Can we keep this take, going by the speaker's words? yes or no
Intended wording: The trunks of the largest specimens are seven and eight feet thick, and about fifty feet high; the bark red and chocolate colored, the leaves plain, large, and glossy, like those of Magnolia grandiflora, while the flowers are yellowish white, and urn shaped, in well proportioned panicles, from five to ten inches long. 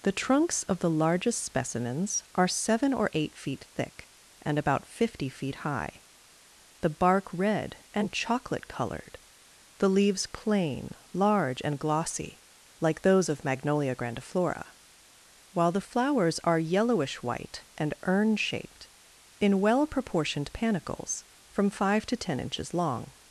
no